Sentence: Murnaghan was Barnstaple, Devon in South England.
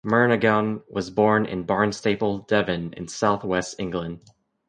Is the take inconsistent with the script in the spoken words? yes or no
yes